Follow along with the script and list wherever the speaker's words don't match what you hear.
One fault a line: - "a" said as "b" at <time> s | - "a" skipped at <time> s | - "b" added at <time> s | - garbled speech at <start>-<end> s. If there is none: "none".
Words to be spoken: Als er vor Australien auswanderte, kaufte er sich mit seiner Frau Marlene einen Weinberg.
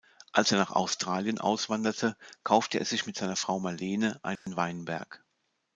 - "vor" said as "nach" at 0.6 s